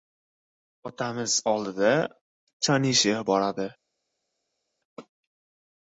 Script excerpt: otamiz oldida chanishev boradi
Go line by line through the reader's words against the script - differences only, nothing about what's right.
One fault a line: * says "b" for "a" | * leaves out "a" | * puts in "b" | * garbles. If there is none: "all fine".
all fine